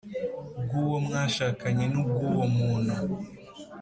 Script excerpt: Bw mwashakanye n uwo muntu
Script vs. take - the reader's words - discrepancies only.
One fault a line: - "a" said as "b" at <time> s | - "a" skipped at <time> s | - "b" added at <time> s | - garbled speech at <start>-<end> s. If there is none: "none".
- "uwo" added at 0.8 s
- "ubw" added at 2.0 s